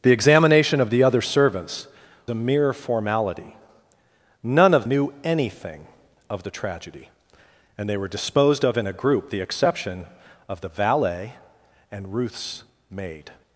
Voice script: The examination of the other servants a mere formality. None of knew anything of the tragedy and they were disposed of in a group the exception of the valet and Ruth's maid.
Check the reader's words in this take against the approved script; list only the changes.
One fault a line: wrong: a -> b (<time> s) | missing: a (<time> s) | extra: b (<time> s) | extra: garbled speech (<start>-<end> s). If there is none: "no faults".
no faults